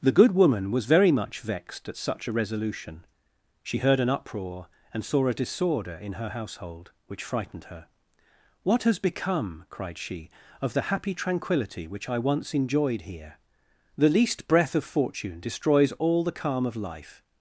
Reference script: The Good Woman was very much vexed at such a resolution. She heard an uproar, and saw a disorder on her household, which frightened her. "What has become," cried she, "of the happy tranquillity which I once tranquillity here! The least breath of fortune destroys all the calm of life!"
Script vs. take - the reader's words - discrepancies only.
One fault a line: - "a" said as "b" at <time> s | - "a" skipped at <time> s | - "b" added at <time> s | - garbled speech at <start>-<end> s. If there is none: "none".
- "on" said as "in" at 6.0 s
- "tranquillity" said as "enjoyed" at 12.5 s